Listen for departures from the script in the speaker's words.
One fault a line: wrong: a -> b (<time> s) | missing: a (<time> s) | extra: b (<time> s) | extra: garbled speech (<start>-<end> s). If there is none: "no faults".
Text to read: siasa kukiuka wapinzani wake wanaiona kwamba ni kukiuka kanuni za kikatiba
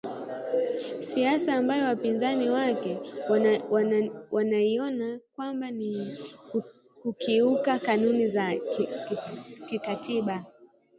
wrong: kukiuka -> ambayo (1.6 s)